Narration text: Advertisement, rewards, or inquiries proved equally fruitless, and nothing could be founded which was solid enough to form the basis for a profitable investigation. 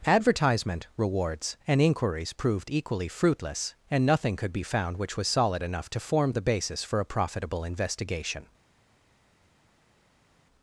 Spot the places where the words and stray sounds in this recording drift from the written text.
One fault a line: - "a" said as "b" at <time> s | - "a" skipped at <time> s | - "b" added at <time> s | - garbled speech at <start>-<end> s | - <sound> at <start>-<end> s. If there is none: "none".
- "or" said as "and" at 1.7 s
- "founded" said as "found" at 4.6 s